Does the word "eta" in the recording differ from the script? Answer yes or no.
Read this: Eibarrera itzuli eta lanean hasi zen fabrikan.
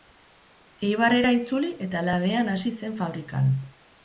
no